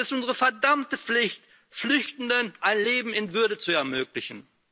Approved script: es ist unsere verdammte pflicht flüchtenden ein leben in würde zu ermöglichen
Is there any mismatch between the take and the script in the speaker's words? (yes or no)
no